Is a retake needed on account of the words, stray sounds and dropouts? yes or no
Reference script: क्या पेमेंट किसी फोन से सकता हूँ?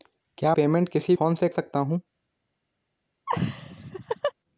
yes